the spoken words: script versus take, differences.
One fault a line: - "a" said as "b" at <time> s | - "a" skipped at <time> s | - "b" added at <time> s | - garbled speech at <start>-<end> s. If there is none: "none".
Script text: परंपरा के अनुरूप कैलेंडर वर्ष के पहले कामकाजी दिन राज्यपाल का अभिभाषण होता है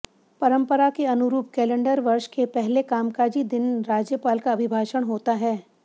none